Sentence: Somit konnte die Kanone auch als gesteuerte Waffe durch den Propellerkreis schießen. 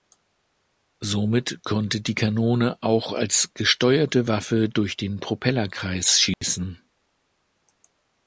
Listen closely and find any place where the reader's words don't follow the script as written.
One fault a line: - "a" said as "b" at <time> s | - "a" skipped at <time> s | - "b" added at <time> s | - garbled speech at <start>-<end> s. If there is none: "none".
none